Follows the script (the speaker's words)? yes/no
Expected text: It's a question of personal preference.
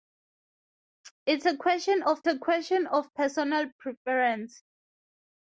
no